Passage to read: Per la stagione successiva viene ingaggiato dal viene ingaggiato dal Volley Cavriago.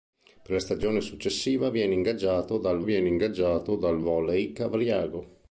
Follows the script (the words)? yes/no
yes